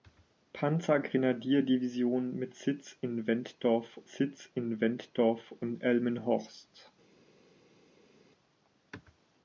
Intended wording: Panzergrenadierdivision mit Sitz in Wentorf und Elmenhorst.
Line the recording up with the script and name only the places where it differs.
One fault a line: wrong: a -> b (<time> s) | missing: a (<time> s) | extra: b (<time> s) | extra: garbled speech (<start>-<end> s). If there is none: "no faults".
extra: Sitz in Wentorf (4.1 s)